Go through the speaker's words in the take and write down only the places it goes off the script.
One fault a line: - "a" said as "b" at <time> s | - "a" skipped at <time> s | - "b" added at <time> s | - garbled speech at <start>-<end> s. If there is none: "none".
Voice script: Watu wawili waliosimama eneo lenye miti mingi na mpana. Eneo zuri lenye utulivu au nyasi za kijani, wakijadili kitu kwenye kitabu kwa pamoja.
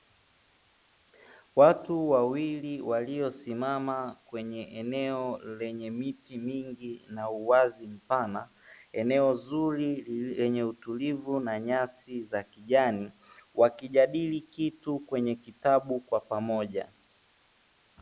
- "kwenye" added at 4.2 s
- "uwazi" added at 7.3 s
- "au" said as "na" at 11.4 s